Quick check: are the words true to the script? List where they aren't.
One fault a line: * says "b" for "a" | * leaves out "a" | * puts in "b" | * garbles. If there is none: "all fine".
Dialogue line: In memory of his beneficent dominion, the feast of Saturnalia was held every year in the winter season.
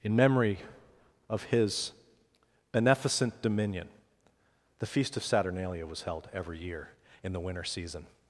all fine